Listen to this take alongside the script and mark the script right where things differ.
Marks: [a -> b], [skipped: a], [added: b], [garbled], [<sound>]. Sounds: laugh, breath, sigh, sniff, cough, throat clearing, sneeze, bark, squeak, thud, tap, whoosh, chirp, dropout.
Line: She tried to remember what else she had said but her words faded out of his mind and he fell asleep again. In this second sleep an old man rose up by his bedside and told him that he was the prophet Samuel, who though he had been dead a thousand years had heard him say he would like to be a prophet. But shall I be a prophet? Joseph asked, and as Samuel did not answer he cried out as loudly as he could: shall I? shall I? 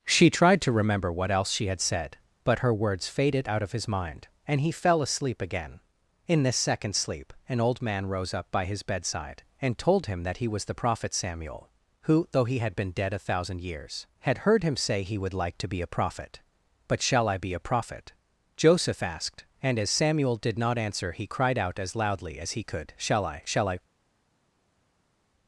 She tried to remember what else she had said but her words faded out of his mind and he fell asleep again. In this second sleep an old man rose up by his bedside and told him that he was the prophet Samuel, who though he had been dead a thousand years had heard him say he would like to be a prophet. But shall I be a prophet? Joseph asked, and as Samuel did not answer he cried out as loudly as he could: shall I? shall I?